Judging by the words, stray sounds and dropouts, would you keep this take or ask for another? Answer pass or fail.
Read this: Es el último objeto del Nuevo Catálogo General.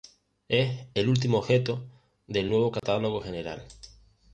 fail